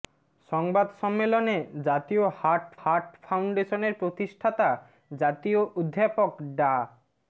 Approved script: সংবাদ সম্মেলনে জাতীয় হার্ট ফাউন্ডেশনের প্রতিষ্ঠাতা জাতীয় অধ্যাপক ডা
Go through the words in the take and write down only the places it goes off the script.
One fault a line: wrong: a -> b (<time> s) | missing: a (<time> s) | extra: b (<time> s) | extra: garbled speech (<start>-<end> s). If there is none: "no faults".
extra: হার্ট (2.8 s)